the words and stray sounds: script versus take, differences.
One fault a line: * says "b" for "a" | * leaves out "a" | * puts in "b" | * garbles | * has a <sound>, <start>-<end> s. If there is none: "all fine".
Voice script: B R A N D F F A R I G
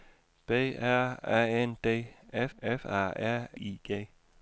all fine